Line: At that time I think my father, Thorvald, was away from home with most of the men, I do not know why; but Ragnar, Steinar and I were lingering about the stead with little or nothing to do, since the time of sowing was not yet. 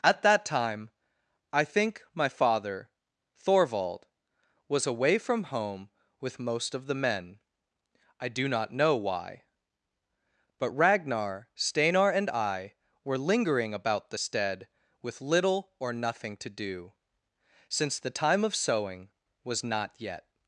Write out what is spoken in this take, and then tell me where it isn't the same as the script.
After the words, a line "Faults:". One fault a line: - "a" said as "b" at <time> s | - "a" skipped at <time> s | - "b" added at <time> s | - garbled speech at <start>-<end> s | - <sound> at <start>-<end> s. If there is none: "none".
At that time I think my father, Thorvald, was away from home with most of the men, I do not know why; but Ragnar, Steinar and I were lingering about the stead with little or nothing to do, since the time of sowing was not yet.
Faults:
none